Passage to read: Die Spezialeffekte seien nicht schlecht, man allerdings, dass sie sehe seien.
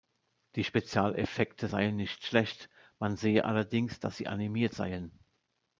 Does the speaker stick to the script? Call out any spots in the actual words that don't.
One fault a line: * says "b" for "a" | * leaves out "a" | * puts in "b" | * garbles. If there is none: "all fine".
* puts in "sehe"
* says "animiert" for "sehe"